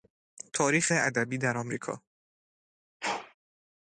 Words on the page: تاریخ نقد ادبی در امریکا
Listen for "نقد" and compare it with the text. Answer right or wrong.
wrong